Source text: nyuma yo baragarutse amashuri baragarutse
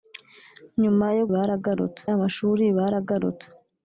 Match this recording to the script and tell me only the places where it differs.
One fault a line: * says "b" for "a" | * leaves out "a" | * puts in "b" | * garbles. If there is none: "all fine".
all fine